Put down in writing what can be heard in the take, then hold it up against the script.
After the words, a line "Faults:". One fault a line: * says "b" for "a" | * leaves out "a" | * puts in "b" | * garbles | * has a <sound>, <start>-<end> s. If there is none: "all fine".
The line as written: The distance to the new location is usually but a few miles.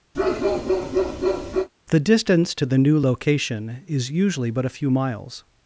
The distance to the new location is usually but a few miles.
Faults:
* has a bark, 0.1-1.7 s